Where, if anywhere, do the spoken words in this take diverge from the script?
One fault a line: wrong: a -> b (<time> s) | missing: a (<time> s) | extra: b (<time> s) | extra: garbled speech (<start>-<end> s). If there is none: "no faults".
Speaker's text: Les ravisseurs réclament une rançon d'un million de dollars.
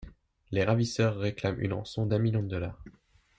no faults